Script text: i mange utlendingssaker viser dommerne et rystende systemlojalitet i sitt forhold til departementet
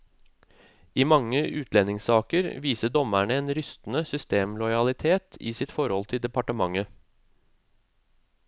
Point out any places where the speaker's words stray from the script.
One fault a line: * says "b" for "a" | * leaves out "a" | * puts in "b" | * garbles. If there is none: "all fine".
* says "en" for "et"